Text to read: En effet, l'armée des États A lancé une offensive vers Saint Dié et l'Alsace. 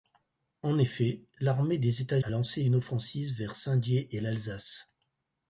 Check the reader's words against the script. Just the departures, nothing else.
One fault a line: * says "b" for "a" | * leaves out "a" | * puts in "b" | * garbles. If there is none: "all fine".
all fine